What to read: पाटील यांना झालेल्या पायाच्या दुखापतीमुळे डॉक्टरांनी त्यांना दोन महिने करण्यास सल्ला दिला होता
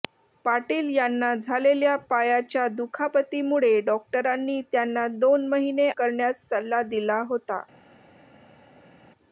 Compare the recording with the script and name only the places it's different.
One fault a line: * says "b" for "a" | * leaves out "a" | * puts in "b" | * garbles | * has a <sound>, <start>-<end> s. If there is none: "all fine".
all fine